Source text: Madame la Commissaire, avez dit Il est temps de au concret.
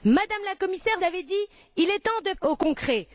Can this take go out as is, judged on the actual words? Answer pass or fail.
pass